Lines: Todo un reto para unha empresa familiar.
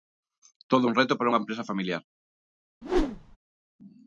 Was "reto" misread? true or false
false